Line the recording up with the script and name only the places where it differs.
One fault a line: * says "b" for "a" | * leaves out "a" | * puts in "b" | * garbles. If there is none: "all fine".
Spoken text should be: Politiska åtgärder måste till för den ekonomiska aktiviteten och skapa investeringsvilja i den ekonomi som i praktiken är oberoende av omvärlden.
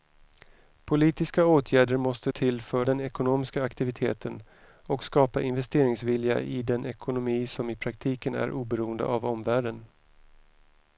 all fine